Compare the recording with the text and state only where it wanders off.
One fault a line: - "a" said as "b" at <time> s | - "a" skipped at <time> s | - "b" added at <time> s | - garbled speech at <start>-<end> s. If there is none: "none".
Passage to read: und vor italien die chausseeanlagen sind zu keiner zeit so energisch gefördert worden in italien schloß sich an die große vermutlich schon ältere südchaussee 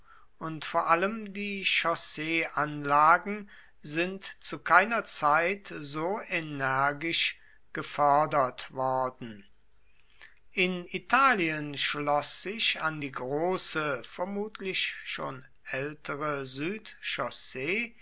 - "italien" said as "allem" at 0.9 s